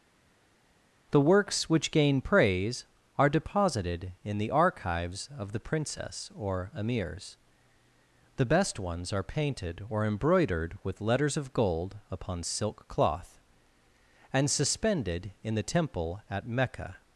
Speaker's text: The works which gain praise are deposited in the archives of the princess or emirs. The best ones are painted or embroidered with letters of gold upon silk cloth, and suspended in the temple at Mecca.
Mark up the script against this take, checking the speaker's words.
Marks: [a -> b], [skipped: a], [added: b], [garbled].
The works which gain praise are deposited in the archives of the princess or emirs. The best ones are painted or embroidered with letters of gold upon silk cloth, and suspended in the temple at Mecca.